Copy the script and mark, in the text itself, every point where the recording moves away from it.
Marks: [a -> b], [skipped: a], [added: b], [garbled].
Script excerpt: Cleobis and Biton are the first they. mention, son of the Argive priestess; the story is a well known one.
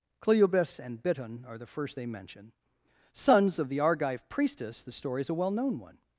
Cleobis and Biton are the first they. mention, [son -> sons] of the Argive priestess; the story is a well known one.